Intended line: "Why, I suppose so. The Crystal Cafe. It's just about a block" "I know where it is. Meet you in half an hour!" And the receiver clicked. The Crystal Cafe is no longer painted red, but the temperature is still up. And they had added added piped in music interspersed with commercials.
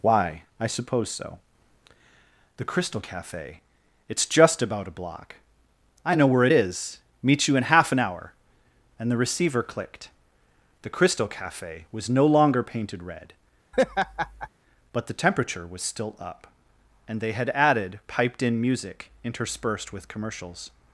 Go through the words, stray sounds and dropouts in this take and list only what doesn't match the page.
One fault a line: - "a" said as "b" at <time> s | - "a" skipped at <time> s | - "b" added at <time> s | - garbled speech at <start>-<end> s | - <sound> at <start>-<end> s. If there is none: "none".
- "is" said as "was" at 11.9 s
- laugh at 13.7-14.5 s
- "is" said as "was" at 15.7 s
- "added" skipped at 18.0 s